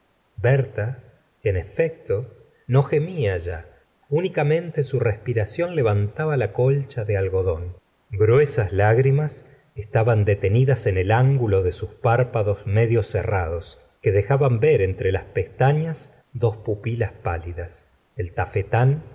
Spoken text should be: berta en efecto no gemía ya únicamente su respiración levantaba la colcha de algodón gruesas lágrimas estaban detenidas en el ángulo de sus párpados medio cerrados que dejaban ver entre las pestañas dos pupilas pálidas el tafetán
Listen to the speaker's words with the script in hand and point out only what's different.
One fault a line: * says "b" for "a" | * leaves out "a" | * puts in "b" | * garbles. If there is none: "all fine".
all fine